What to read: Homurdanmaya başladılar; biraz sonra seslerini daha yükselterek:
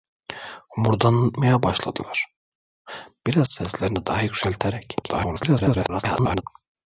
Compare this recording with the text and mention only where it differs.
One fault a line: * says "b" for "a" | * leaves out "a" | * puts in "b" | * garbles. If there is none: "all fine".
* leaves out "sonra"
* garbles